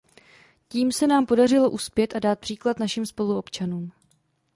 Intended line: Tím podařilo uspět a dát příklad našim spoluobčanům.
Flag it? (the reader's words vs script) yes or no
yes